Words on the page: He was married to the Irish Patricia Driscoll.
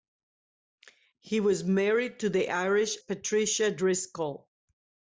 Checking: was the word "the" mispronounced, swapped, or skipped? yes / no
no